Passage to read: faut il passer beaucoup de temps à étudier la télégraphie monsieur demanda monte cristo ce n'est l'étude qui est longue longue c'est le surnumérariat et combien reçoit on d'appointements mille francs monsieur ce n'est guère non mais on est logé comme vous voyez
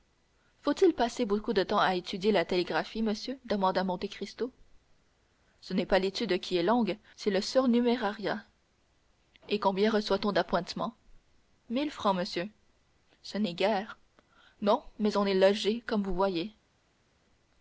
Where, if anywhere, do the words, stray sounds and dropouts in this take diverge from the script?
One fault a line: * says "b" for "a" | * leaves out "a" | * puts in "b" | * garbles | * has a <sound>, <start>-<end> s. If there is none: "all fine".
* puts in "pas"
* leaves out "longue"